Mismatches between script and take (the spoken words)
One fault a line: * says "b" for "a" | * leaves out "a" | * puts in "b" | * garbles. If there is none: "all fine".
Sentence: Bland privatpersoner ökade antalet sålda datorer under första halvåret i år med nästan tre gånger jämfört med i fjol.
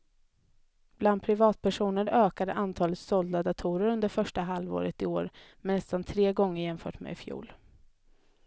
all fine